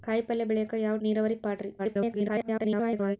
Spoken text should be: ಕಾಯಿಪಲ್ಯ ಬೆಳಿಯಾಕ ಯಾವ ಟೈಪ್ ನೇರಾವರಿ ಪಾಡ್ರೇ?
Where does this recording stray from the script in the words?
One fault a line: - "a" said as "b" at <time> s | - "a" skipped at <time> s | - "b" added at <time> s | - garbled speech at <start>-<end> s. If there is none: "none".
- "ಟೈಪ್" skipped at 1.0 s
- garbled speech at 1.8-3.2 s